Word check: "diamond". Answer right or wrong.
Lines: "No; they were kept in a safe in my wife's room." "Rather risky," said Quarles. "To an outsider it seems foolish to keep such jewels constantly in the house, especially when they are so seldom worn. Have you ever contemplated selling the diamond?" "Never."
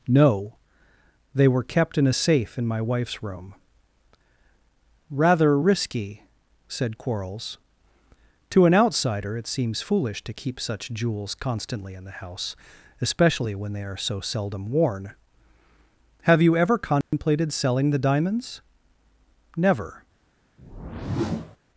wrong